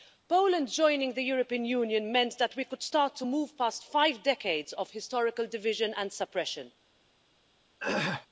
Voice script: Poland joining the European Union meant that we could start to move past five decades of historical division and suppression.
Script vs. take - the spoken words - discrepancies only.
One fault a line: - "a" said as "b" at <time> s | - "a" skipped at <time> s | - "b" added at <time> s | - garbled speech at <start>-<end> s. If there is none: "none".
none